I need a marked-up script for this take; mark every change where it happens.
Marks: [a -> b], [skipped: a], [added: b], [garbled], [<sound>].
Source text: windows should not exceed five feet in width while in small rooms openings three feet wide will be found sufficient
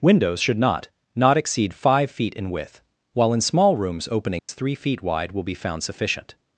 windows should not [added: not] exceed five feet in width while in small rooms openings [dropout] three feet wide will be found sufficient